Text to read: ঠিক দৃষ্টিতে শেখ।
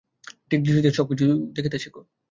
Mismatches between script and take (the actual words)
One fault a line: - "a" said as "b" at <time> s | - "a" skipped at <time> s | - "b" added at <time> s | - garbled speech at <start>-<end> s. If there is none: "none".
- "সব কিছু দেখিতে" added at 0.9 s